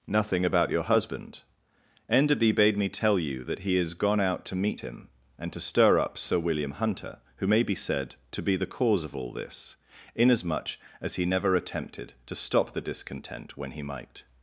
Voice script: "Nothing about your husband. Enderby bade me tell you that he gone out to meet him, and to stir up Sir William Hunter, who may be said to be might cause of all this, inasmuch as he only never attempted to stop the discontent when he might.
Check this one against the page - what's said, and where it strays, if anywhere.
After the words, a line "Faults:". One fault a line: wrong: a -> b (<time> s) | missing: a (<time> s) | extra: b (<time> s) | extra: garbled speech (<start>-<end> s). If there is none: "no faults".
"Nothing about your husband. Enderby bade me tell you that he is gone out to meet him, and to stir up Sir William Hunter, who may be said to be the cause of all this, inasmuch as he never attempted to stop the discontent when he might.
Faults:
extra: is (3.8 s)
wrong: might -> the (8.5 s)
missing: only (11.2 s)